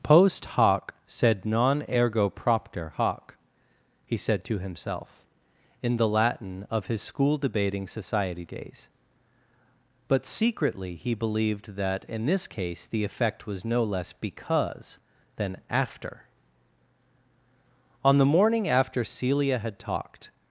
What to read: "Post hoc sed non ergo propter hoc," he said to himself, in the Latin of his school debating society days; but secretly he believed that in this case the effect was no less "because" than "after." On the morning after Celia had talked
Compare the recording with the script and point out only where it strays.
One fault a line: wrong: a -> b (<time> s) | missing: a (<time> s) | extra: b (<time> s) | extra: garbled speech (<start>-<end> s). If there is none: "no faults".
no faults